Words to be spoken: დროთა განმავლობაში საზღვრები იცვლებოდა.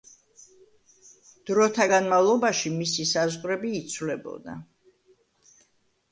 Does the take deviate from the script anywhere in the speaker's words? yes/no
yes